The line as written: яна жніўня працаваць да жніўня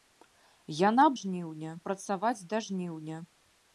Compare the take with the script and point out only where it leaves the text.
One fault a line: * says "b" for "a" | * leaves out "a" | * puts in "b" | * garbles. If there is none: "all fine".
all fine